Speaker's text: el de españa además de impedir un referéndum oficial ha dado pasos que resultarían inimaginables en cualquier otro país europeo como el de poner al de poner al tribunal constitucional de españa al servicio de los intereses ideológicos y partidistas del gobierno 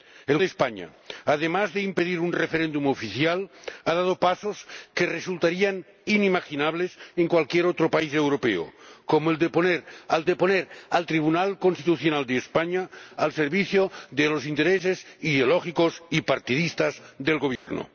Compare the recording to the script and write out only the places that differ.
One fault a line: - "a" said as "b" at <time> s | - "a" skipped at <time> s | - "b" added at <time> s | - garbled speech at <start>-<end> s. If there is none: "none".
none